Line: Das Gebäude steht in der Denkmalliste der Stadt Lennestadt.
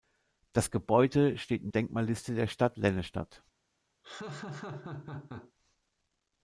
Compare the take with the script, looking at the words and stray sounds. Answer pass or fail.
fail